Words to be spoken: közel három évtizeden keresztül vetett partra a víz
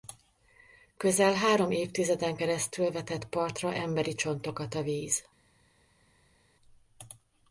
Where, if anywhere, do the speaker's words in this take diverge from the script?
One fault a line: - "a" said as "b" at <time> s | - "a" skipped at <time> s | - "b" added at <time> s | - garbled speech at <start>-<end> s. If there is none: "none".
- "emberi csontokat" added at 3.7 s